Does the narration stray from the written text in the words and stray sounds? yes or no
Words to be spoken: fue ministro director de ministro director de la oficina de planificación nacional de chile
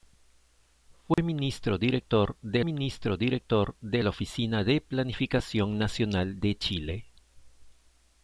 yes